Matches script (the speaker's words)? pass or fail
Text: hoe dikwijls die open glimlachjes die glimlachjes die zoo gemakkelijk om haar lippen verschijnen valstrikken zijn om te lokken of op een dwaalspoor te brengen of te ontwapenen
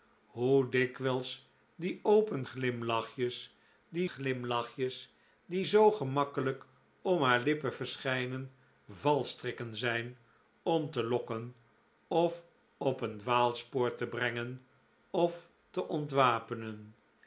pass